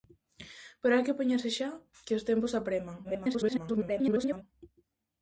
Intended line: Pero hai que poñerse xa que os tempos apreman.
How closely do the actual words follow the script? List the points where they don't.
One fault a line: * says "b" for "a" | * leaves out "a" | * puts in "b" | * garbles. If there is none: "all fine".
* garbles